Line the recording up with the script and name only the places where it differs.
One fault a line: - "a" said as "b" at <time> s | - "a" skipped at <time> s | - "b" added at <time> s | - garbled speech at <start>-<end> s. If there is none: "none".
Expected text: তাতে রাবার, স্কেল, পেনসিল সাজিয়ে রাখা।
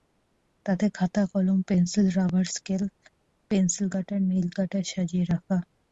- "খাতা কলম পেনসিল" added at 1.0 s
- "কাটার নেইল কাটার" added at 3.9 s